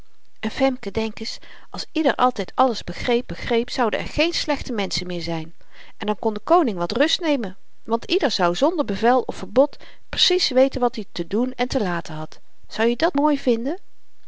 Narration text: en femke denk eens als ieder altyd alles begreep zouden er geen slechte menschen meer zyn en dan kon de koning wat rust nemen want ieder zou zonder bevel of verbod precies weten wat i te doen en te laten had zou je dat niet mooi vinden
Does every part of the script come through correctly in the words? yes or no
no